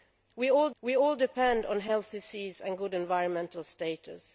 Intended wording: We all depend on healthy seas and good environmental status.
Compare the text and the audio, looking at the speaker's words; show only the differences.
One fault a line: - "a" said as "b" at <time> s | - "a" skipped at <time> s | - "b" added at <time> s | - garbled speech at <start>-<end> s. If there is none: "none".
- "we all" added at 0.8 s